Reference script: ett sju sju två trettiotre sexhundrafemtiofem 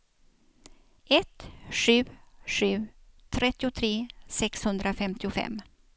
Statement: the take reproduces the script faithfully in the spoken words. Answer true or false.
false